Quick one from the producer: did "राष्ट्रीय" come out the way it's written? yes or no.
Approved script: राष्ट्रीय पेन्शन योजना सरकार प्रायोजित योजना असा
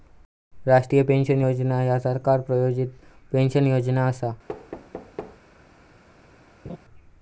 yes